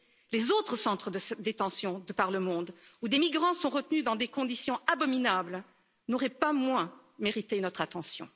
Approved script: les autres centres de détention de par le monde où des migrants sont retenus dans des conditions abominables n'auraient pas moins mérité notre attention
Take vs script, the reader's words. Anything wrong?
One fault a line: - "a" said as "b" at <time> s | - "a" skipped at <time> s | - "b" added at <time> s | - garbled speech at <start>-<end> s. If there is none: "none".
none